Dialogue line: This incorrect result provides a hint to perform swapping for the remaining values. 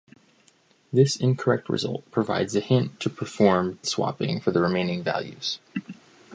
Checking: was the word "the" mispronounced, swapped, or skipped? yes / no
no